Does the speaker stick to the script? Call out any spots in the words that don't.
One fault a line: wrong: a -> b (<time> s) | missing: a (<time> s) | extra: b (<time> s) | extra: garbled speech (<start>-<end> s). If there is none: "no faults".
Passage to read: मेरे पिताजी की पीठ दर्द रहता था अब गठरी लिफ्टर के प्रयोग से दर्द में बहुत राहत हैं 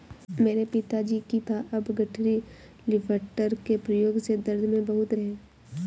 missing: पीठ दर्द रहता (1.4 s)
missing: राहत (5.1 s)